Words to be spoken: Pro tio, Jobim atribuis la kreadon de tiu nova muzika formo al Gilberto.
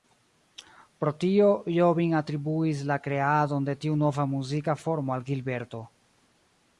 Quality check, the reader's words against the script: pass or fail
pass